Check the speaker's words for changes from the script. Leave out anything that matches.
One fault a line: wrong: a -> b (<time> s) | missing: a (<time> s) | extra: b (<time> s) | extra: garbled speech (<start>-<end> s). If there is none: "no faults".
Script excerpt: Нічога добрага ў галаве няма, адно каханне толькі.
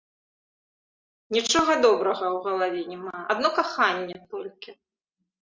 no faults